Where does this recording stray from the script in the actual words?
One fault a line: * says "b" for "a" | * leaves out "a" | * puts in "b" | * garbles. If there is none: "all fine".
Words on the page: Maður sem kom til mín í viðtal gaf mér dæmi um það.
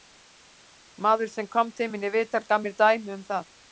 all fine